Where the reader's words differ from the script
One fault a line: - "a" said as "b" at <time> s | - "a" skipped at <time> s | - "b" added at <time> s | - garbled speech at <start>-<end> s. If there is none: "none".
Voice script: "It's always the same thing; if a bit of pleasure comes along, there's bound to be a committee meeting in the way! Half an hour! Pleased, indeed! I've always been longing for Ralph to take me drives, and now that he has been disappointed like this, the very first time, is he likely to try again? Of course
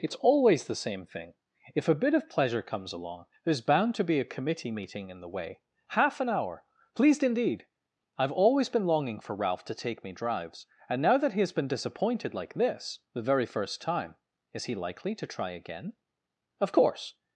none